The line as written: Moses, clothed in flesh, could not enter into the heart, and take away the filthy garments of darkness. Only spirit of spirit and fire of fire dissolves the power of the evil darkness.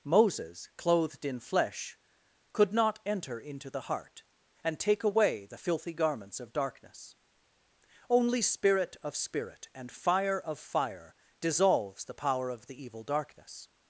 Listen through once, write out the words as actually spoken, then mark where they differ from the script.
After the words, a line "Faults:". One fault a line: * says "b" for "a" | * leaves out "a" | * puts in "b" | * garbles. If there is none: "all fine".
Moses, clothed in flesh, could not enter into the heart, and take away the filthy garments of darkness. Only spirit of spirit and fire of fire dissolves the power of the evil darkness.
Faults:
all fine